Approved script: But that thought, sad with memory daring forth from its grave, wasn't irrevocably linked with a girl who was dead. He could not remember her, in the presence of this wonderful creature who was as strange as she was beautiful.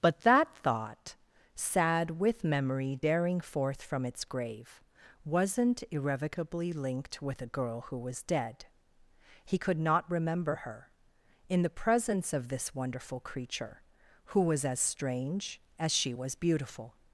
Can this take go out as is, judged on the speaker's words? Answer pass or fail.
pass